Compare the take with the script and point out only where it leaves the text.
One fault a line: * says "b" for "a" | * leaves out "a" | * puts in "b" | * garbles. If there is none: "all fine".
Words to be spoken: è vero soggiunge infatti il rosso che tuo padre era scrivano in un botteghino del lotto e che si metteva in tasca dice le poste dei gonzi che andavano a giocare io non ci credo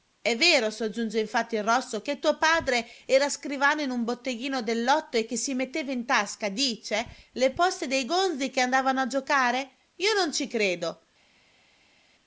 all fine